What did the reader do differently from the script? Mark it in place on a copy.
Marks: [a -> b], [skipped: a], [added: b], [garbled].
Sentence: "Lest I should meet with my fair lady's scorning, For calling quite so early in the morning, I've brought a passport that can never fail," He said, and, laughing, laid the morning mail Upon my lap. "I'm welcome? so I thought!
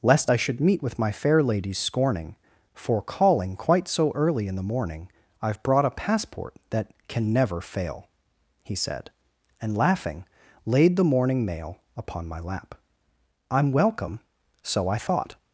"Lest I should meet with my fair lady's scorning, For calling quite so early in the morning, I've brought a passport that can never fail," He said, and, laughing, laid the morning mail Upon my lap. "I'm welcome? so I thought!